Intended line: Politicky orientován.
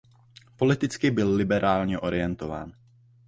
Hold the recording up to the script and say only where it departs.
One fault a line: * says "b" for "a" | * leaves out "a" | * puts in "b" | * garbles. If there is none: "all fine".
* puts in "byl liberálně"